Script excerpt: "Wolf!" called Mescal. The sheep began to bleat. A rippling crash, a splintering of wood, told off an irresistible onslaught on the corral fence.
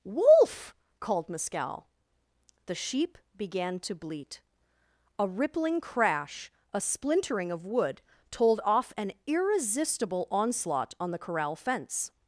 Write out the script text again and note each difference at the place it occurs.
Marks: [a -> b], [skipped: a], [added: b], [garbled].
"Wolf!" called Mescal. The sheep began to bleat. A rippling crash, a splintering of wood, told off an irresistible onslaught on the corral fence.